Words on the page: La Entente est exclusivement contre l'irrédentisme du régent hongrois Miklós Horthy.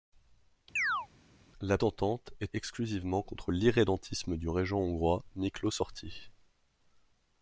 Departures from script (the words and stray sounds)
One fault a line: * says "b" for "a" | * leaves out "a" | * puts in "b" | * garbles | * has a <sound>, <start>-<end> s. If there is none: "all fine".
* has a chirp, 0.8-1.1 s